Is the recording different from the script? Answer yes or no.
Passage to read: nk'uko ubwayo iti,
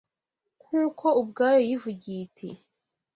yes